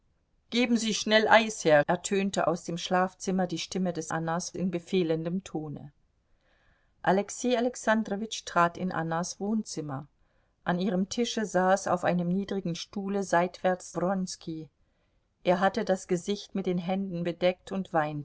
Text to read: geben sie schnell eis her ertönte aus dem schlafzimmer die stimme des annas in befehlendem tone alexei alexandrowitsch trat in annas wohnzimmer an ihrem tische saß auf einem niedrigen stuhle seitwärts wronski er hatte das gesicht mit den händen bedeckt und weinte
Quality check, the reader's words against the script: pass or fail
pass